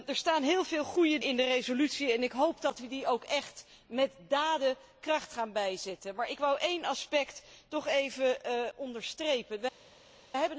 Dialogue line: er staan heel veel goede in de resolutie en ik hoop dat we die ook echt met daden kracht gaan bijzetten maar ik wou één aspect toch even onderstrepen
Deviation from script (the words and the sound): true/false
false